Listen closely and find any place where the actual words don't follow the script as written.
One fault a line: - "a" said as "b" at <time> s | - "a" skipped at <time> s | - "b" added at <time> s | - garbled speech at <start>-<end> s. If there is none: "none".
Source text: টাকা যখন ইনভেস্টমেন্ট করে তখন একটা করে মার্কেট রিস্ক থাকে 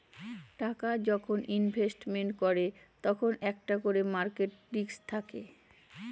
none